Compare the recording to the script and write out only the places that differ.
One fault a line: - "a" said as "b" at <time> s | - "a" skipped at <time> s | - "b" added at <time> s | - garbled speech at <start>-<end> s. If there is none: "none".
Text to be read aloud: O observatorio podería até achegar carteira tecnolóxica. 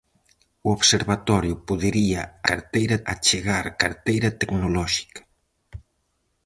- "até" said as "carteira" at 2.5 s